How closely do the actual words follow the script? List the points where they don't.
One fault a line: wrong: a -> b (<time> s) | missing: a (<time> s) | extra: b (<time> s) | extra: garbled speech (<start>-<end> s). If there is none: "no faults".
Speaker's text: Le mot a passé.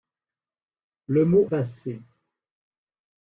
missing: a (1.5 s)